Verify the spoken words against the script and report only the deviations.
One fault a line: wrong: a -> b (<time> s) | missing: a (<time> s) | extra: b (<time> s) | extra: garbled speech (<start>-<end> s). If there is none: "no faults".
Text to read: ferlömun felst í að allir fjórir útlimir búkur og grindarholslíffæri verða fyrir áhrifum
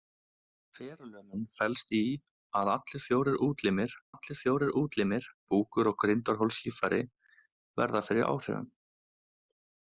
extra: allir fjórir útlimir (4.1 s)